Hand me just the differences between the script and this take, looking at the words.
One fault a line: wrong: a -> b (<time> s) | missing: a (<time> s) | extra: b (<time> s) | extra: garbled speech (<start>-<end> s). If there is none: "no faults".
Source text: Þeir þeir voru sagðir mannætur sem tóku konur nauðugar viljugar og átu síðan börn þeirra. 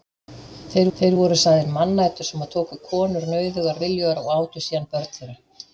no faults